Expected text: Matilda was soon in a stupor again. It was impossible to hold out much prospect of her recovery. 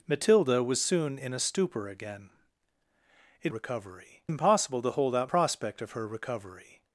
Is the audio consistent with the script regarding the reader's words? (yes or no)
no